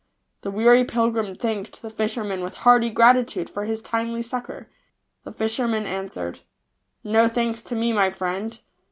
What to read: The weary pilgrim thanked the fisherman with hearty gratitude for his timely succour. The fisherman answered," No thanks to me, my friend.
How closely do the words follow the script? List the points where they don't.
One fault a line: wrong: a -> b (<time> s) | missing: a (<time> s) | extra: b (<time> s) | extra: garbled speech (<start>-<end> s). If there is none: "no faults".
no faults